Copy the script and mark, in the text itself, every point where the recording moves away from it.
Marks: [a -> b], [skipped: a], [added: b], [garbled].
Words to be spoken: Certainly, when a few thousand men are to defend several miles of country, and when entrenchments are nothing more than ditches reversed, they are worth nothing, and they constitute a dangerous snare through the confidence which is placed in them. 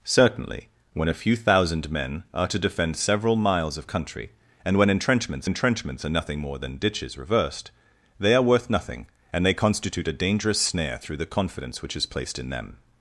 Certainly, when a few thousand men are to defend several miles of country, and when entrenchments [added: entrenchments] are nothing more than ditches reversed, they are worth nothing, and they constitute a dangerous snare through the confidence which is placed in them.